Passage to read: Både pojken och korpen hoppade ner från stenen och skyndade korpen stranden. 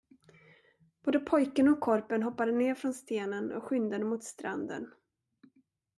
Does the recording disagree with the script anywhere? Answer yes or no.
yes